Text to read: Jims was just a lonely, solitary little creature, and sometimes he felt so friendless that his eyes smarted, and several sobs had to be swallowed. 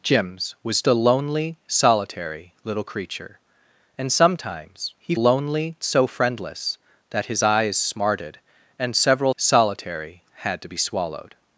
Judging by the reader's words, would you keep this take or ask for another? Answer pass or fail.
fail